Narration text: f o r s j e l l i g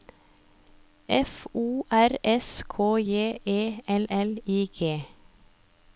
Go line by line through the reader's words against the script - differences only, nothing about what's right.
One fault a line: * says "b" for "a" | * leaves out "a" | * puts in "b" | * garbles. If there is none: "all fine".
* puts in "k"